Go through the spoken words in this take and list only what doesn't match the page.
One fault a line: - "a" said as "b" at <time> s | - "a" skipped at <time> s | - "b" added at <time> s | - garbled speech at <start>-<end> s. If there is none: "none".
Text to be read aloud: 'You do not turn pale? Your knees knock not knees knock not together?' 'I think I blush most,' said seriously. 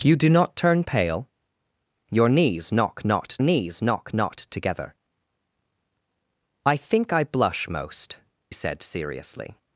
none